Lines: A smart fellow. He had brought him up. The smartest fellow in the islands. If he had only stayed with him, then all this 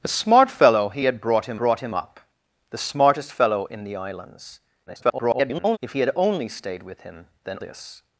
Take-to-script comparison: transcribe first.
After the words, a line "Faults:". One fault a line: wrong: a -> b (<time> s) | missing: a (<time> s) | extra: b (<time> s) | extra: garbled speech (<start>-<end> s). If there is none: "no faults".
A smart fellow. He had brought him brought him up. The smartest fellow in the islands. [garbled] If he had only stayed with him, then this
Faults:
extra: brought him (1.5 s)
extra: garbled speech (4.9-5.8 s)
missing: all (7.6 s)